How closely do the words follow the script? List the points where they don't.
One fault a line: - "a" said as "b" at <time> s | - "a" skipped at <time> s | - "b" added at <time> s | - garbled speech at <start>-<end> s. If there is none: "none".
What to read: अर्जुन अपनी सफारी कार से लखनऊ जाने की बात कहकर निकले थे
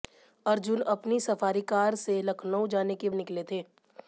- "बात कहकर" skipped at 3.1 s